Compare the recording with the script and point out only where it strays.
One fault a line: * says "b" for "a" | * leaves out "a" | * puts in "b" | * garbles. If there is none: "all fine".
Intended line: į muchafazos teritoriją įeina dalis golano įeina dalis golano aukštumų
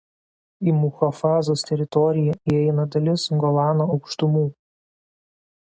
* leaves out "įeina dalis golano"